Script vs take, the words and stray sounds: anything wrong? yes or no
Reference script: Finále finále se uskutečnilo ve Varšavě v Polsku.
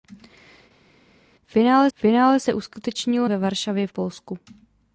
no